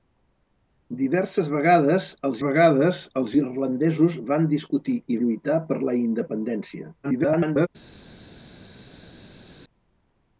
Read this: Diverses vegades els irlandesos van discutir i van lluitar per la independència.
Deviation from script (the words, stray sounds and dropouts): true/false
true